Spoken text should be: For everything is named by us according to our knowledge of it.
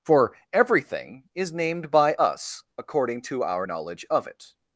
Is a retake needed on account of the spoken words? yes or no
no